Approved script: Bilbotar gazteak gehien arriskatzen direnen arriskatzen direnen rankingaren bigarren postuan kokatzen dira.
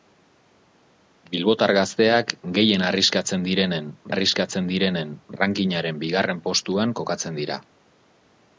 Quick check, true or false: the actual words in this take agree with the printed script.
true